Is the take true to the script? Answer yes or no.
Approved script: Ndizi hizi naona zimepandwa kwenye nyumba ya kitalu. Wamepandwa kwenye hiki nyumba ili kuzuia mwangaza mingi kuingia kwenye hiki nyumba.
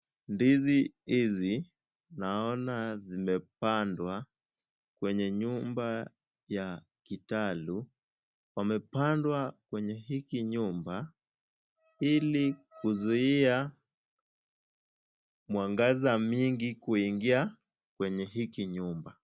yes